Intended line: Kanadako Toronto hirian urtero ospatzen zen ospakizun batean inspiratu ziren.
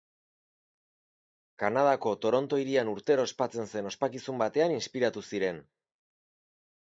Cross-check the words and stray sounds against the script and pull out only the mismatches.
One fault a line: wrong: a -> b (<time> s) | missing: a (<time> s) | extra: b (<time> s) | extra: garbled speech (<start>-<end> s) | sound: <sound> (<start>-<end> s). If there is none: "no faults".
no faults